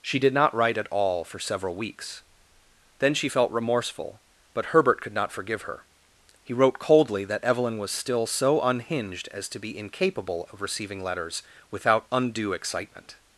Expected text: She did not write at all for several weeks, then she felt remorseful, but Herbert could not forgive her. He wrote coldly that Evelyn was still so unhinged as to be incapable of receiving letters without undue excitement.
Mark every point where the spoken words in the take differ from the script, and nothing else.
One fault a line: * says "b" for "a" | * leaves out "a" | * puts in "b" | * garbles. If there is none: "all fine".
all fine